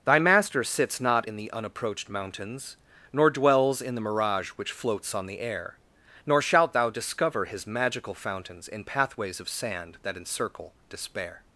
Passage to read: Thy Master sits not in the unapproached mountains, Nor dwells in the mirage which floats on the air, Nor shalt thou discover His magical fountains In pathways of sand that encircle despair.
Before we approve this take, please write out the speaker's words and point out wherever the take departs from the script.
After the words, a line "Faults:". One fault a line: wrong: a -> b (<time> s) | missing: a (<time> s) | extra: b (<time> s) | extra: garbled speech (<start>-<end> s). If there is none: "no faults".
Thy Master sits not in the unapproached mountains, Nor dwells in the mirage which floats on the air, Nor shalt thou discover His magical fountains In pathways of sand that encircle despair.
Faults:
no faults